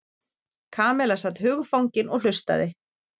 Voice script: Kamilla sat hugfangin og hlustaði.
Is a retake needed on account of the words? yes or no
no